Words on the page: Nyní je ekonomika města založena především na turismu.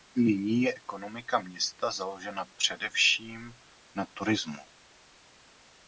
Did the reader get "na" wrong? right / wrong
right